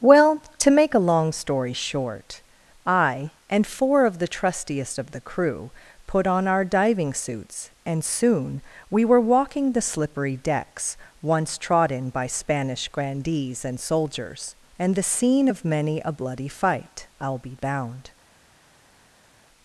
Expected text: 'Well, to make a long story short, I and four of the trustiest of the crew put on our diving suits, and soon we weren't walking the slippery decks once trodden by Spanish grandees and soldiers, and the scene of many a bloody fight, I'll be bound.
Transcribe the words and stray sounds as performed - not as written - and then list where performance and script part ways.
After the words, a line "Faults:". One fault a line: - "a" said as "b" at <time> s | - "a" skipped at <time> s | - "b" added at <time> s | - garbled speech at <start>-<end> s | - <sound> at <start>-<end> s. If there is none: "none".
'Well, to make a long story short, I and four of the trustiest of the crew put on our diving suits, and soon we were walking the slippery decks once trodden by Spanish grandees and soldiers, and the scene of many a bloody fight, I'll be bound.
Faults:
- "weren't" said as "were" at 9.0 s